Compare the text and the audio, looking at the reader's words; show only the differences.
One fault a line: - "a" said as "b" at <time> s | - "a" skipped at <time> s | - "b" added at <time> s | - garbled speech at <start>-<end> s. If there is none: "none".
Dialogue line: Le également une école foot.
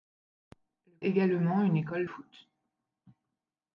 none